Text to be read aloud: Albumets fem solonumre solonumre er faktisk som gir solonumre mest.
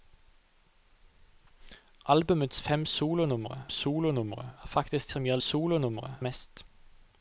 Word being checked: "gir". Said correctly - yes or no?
yes